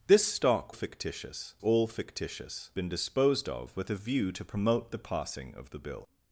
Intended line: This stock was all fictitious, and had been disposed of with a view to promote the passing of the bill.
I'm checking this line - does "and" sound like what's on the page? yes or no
no